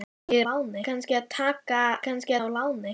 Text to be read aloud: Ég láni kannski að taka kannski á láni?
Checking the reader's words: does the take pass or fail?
pass